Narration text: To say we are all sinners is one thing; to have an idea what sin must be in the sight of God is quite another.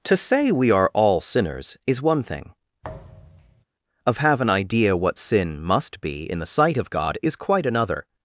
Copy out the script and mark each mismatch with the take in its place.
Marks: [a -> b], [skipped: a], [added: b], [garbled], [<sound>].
To say we are all sinners is one thing; [thud] [to -> of] have an idea what sin must be in the sight of God is quite another.